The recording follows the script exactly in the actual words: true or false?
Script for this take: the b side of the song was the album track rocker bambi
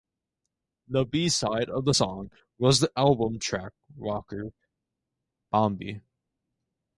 true